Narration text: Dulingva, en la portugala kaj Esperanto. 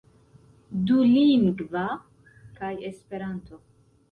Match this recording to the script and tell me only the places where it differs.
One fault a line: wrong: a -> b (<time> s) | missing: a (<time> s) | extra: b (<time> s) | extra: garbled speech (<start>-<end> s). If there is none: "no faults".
missing: en la portugala (1.8 s)